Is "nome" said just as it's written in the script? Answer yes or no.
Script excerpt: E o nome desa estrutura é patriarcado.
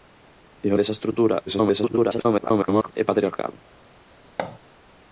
no